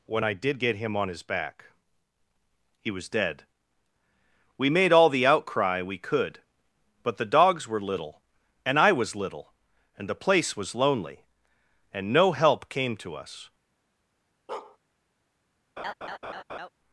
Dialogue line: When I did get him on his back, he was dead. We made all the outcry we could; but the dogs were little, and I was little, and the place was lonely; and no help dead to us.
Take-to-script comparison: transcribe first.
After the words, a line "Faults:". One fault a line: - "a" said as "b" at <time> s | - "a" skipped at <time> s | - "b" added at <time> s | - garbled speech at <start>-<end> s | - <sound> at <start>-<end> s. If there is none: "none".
When I did get him on his back, he was dead. We made all the outcry we could; but the dogs were little, and I was little, and the place was lonely; and no help came to us.
Faults:
- "dead" said as "came" at 12.7 s
- bark at 14.5-14.8 s
- laugh at 15.8-16.7 s